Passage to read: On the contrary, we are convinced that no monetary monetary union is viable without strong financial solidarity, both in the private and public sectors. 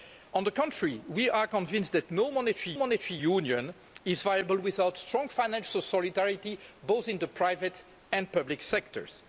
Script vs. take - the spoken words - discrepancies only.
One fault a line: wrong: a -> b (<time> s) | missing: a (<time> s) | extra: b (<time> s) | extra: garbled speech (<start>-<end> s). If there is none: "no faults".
no faults